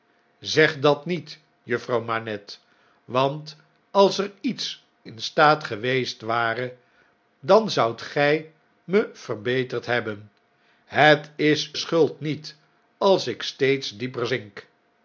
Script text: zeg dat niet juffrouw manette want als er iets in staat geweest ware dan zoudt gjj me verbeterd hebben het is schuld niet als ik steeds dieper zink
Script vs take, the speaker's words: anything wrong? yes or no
no